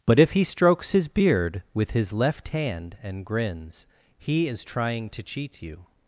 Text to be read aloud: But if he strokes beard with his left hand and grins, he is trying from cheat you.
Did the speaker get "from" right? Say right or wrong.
wrong